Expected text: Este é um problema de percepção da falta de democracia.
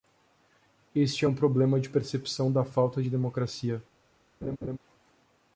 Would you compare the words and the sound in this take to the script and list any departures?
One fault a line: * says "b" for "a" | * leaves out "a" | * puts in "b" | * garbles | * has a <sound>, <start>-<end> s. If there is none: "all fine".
* has a laugh, 4.4-4.8 s